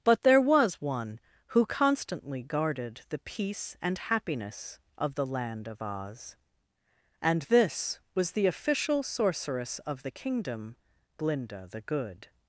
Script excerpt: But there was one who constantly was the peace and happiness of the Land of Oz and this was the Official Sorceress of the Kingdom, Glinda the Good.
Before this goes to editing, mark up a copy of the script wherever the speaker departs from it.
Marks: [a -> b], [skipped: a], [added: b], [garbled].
But there was one who constantly [was -> guarded] the peace and happiness of the Land of Oz and this was the Official Sorceress of the Kingdom, Glinda the Good.